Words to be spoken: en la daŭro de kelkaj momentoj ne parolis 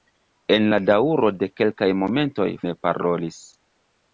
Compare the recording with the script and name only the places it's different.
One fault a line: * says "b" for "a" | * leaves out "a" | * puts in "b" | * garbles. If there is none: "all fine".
all fine